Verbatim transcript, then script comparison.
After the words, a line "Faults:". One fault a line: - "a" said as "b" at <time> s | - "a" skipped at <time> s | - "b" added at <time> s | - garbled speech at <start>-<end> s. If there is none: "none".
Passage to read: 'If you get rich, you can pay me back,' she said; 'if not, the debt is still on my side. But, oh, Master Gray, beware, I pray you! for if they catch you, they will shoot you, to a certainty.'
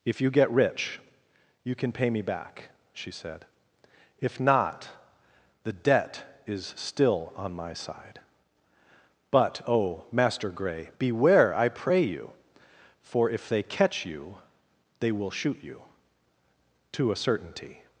'If you get rich, you can pay me back,' she said; 'if not, the debt is still on my side. But, oh, Master Gray, beware, I pray you! for if they catch you, they will shoot you, to a certainty.'
Faults:
none